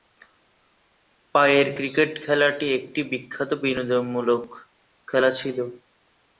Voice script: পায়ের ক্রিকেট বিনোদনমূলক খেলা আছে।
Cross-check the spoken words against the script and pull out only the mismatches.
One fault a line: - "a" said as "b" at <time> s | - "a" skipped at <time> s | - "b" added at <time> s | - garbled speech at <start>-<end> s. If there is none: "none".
- "খেলাটি একটি বিখ্যাত" added at 2.2 s
- "আছে" said as "ছিল" at 5.4 s